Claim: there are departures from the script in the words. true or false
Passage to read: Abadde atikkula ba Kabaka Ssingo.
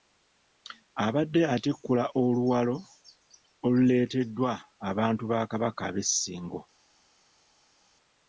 true